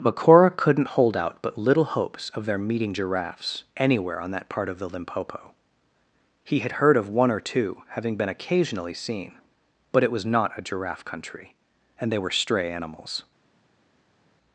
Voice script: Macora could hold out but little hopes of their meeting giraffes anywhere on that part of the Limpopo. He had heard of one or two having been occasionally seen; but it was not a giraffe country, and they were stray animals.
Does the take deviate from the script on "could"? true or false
true